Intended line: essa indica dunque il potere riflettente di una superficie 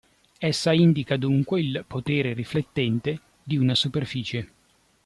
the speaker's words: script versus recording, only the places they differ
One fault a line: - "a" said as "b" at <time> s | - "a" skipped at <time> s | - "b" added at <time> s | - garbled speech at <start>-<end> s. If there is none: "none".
none